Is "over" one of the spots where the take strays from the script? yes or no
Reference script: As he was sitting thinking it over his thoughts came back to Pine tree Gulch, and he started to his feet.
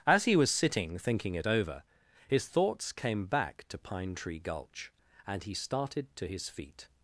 no